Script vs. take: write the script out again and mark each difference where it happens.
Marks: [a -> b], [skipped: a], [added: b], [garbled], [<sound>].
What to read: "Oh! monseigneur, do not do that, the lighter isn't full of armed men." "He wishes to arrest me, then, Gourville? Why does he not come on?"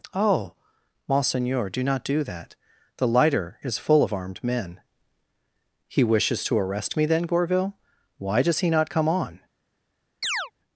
"Oh! monseigneur, do not do that, the lighter [isn't -> is] full of armed men." "He wishes to arrest me, then, Gourville? Why does he not come on?" [chirp]